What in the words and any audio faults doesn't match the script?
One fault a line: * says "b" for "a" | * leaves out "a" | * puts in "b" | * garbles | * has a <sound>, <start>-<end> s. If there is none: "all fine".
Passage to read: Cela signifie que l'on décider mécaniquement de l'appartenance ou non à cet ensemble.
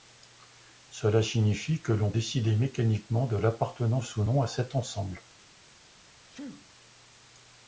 * has a sneeze, 6.3-6.7 s